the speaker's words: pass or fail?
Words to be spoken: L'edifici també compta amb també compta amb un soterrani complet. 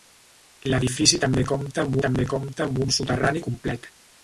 pass